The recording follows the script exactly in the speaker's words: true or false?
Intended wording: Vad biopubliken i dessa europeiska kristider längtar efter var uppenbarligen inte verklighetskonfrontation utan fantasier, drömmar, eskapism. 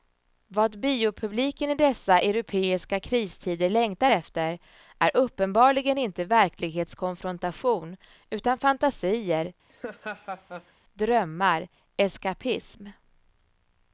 false